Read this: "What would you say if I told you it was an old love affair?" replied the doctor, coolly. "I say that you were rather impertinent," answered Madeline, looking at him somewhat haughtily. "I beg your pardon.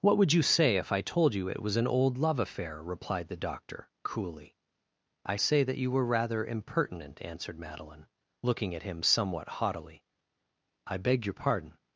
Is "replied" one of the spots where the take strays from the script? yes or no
no